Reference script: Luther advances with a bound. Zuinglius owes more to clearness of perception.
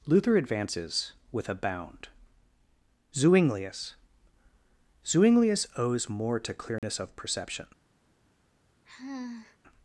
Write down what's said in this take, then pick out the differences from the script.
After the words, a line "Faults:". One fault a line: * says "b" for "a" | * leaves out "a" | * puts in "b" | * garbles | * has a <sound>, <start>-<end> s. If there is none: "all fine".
Luther advances with a bound. Zuinglius Zuinglius owes more to clearness of perception.
Faults:
* puts in "Zuinglius"
* has a dropout, 6.8-6.8 s
* has a sigh, 8.8-9.6 s